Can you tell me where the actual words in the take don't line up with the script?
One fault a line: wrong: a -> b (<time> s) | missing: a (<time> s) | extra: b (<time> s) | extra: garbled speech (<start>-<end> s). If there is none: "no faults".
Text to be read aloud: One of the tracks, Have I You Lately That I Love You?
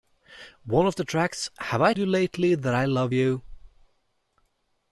no faults